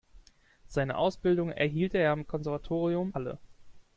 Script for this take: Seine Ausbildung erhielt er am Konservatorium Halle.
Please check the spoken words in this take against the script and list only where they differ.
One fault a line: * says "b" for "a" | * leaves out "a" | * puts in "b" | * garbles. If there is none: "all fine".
all fine